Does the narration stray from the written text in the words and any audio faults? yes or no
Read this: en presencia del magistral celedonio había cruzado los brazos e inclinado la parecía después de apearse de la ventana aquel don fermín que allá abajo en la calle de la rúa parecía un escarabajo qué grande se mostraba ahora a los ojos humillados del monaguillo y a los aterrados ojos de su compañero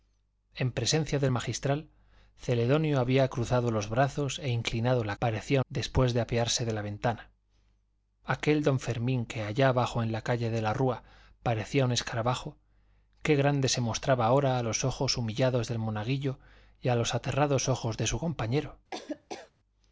yes